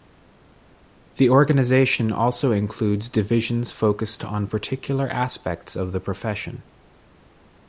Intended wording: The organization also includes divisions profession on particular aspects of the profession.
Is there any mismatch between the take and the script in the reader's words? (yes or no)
yes